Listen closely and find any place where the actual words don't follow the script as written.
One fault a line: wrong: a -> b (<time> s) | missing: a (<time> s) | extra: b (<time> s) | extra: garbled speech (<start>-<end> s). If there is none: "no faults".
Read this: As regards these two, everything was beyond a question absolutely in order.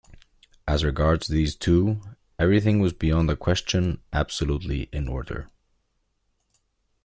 no faults